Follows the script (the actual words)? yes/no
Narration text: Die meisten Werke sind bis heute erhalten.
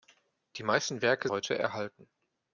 no